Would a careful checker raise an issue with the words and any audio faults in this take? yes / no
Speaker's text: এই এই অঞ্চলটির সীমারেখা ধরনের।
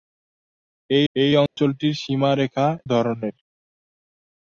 yes